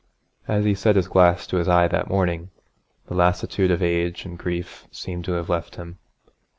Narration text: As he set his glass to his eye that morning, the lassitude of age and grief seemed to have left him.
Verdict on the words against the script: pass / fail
pass